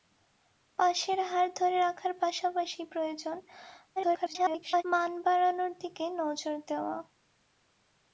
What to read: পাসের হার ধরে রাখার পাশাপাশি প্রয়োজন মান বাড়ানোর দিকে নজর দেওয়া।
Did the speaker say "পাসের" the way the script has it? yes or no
yes